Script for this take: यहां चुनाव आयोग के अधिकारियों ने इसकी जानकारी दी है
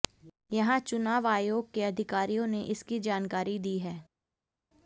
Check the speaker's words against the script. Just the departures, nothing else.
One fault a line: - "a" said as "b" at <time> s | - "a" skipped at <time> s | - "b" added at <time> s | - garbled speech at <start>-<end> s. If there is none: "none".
none